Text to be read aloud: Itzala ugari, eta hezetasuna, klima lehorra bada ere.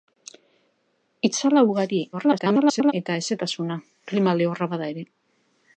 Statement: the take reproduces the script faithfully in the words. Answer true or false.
false